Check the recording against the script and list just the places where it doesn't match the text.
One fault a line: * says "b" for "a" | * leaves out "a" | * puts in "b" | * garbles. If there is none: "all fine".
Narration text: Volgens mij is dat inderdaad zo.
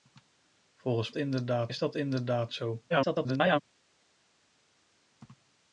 * says "inderdaad" for "mij"
* garbles